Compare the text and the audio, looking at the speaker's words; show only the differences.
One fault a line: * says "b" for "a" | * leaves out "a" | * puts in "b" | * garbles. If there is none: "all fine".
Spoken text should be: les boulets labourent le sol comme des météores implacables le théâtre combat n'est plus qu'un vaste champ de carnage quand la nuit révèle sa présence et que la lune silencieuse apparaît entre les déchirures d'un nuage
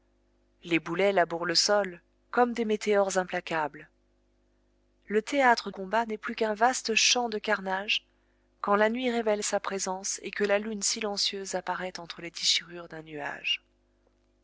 all fine